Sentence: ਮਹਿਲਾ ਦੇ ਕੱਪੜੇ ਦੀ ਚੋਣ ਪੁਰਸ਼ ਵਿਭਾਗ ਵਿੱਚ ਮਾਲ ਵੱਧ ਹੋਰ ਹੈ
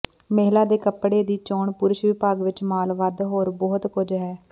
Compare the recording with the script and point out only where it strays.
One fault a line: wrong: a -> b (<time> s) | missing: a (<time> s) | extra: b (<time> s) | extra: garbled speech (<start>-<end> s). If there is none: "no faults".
extra: ਬਹੁਤ ਕੁਝ (3.5 s)